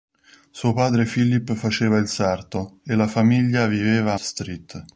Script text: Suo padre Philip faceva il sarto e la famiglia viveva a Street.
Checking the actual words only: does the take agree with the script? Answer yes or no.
yes